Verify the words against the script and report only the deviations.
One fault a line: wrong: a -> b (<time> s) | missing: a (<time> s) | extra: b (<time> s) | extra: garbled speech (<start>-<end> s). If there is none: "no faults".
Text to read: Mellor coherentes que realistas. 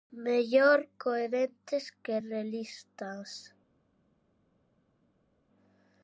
no faults